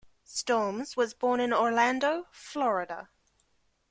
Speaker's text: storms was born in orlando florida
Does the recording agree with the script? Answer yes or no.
yes